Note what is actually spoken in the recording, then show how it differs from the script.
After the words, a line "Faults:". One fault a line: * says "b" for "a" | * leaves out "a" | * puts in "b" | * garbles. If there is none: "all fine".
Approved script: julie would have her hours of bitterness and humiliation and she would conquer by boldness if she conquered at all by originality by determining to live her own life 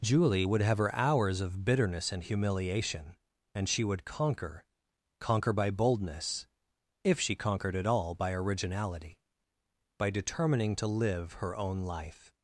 julie would have her hours of bitterness and humiliation and she would conquer conquer by boldness if she conquered at all by originality by determining to live her own life
Faults:
* puts in "conquer"